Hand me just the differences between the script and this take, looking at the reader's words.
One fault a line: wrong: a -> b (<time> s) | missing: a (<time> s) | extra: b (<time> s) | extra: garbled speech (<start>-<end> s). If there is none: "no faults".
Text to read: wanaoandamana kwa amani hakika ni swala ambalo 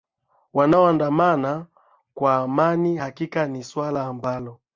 no faults